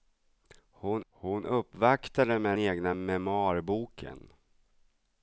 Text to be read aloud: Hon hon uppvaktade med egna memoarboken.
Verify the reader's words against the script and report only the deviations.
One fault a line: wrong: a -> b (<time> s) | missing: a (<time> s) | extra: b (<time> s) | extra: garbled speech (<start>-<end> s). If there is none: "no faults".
no faults